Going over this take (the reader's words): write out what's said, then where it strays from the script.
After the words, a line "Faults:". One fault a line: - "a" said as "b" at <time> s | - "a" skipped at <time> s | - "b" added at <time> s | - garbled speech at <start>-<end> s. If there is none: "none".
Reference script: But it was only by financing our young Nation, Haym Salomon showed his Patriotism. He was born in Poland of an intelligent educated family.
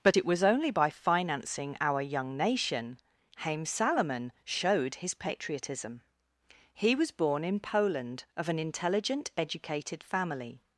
But it was only by financing our young Nation, Haym Salomon showed his Patriotism. He was born in Poland of an intelligent educated family.
Faults:
none